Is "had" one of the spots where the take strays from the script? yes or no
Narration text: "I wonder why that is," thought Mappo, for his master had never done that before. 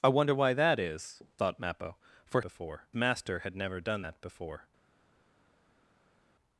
no